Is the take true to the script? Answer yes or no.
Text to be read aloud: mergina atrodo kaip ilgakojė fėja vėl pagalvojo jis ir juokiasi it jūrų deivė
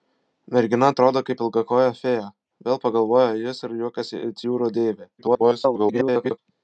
no